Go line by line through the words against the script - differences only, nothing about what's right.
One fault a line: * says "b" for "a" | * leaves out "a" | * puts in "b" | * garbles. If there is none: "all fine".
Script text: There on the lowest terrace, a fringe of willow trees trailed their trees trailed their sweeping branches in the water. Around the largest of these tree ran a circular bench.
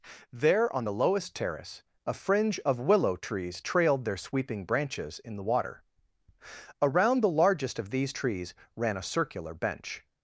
* leaves out "trees trailed their"
* says "trees" for "tree"